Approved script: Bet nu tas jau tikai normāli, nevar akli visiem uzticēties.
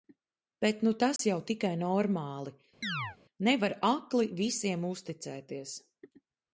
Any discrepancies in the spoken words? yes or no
no